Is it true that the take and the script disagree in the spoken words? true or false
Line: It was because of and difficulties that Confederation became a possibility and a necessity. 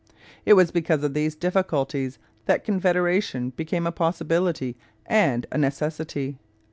true